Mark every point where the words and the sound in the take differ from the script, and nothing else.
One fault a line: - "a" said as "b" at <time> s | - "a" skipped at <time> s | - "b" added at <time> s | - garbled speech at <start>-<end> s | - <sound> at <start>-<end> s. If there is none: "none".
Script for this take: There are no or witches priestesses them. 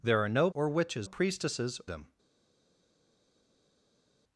none